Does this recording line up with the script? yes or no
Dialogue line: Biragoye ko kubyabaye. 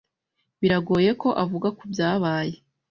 no